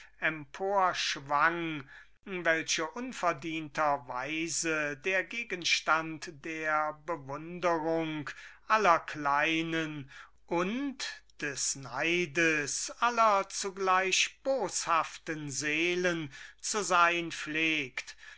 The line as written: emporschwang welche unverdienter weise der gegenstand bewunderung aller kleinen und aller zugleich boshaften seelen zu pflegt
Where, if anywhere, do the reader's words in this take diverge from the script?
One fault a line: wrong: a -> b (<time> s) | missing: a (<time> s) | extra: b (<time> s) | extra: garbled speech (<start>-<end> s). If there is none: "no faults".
extra: der (6.5 s)
extra: des neides (11.4 s)
extra: sein (16.8 s)